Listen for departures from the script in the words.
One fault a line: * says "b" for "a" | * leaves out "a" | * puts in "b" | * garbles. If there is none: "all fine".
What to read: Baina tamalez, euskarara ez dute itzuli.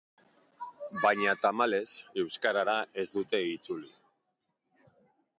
all fine